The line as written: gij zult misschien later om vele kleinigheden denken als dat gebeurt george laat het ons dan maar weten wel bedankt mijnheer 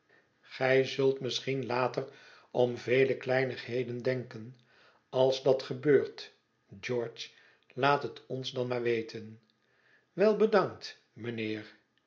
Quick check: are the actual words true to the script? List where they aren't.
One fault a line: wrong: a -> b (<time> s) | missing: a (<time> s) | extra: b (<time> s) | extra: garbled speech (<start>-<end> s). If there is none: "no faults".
no faults